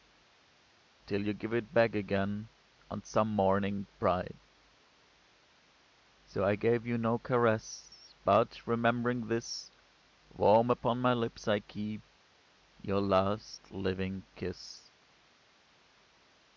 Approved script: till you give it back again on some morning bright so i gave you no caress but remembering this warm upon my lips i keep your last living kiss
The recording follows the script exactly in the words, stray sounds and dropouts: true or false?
true